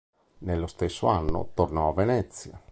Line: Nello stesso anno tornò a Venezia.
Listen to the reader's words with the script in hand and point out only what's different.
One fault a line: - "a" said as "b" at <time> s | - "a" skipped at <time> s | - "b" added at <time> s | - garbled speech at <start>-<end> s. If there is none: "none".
none